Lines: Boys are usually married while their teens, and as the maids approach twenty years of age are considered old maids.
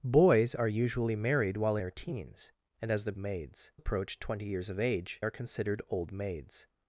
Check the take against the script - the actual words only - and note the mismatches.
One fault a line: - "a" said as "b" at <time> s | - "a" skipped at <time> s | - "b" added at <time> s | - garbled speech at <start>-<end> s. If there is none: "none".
none